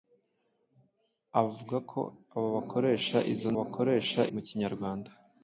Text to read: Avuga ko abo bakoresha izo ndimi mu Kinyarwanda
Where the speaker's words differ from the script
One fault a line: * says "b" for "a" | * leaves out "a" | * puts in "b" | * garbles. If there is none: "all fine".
* says "bakoresha" for "ndimi"